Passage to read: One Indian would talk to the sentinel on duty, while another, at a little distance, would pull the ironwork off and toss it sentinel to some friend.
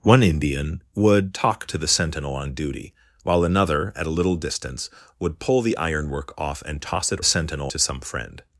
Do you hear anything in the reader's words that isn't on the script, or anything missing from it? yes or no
no